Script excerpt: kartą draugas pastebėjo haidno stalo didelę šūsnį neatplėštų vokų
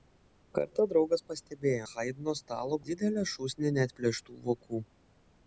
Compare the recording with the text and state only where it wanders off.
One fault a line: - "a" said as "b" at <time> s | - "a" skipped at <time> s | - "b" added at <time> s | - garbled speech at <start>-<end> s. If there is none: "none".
none